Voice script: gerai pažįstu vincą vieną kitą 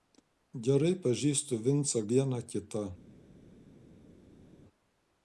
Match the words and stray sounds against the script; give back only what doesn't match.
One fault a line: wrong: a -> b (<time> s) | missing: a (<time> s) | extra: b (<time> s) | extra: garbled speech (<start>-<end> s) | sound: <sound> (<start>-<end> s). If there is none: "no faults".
no faults